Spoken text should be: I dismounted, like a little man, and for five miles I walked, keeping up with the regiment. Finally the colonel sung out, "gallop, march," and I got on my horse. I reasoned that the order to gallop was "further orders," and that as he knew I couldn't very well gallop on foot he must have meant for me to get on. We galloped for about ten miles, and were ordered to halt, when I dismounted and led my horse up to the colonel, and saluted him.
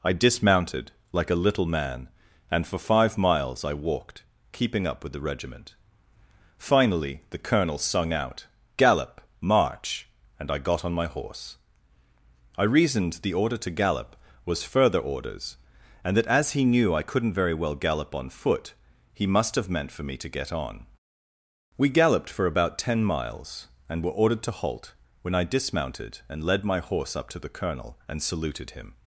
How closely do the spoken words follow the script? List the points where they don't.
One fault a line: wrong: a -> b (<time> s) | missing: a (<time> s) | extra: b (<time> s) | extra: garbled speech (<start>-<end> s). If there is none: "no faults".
missing: that (13.2 s)